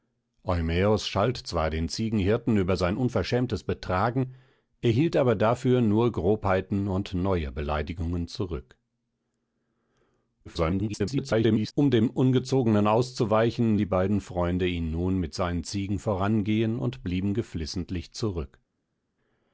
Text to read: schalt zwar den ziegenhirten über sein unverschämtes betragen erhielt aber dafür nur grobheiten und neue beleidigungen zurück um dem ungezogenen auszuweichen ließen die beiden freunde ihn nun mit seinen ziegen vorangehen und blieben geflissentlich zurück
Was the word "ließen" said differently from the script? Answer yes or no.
yes